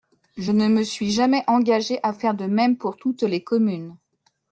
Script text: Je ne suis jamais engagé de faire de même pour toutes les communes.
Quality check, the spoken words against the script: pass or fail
fail